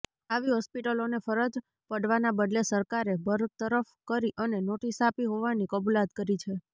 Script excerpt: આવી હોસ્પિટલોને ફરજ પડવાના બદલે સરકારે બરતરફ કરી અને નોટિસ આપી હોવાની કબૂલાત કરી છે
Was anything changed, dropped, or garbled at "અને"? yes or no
no